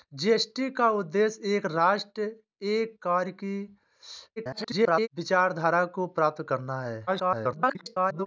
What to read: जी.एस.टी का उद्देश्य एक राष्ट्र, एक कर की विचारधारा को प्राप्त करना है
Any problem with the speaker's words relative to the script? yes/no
yes